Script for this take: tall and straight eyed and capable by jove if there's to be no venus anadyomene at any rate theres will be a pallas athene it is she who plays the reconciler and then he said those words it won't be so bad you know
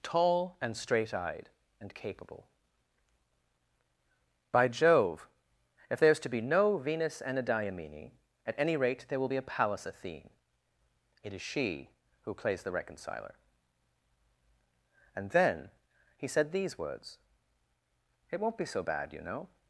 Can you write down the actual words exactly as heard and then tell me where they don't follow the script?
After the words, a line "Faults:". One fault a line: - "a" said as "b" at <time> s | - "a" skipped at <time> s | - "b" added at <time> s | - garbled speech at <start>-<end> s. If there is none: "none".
tall and straight eyed and capable by jove if there's to be no venus anadyomene at any rate there will be a pallas athene it is she who plays the reconciler and then he said these words it won't be so bad you know
Faults:
- "theres" said as "there" at 9.1 s
- "those" said as "these" at 16.5 s